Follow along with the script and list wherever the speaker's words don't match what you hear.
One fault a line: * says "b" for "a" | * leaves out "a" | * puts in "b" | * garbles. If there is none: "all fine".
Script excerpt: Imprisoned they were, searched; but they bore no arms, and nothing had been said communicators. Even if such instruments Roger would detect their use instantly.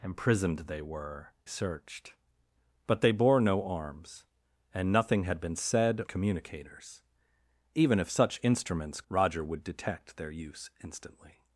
all fine